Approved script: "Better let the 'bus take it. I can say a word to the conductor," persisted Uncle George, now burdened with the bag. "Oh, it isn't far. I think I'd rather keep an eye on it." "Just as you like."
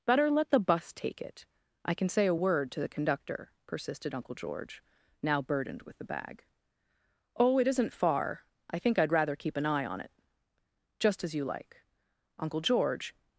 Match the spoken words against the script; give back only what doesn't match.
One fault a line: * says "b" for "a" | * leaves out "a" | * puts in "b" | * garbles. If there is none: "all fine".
* puts in "Uncle George"